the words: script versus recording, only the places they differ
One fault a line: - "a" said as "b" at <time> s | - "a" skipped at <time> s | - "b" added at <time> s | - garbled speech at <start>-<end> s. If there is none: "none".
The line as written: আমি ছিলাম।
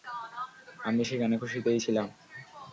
- "সেখানে খুশিতেই" added at 1.0 s